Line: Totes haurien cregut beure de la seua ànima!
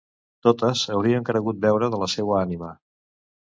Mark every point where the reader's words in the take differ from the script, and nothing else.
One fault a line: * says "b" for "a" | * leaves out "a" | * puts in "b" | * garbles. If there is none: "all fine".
all fine